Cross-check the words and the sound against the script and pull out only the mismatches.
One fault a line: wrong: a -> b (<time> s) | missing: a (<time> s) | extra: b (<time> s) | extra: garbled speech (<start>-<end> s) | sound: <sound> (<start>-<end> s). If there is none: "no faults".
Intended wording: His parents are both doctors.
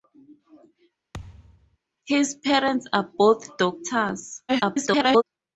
sound: thud (1.1-1.8 s)
extra: garbled speech (4.5-5.2 s)